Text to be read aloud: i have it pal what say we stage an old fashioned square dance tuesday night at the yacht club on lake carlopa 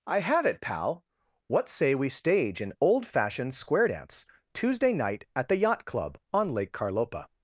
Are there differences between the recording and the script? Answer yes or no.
no